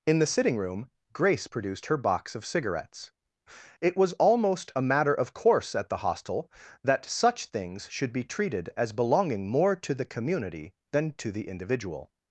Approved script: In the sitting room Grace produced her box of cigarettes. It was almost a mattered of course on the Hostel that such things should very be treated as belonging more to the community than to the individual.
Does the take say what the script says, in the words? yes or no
no